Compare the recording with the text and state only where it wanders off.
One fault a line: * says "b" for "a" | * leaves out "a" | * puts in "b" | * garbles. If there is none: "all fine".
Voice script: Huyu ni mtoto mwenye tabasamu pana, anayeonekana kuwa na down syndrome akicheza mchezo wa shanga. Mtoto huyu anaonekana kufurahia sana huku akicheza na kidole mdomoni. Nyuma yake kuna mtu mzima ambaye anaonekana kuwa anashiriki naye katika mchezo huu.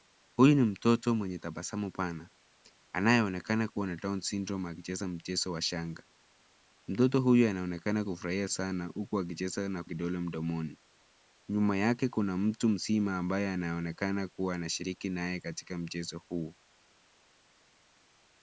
all fine